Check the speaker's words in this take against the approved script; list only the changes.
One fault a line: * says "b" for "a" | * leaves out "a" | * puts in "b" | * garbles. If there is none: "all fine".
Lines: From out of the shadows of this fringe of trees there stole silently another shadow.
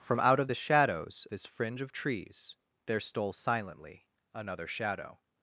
* leaves out "of"